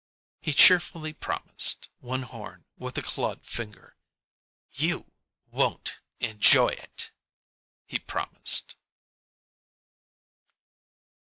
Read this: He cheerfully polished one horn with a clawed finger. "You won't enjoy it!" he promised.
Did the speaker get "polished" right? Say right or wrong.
wrong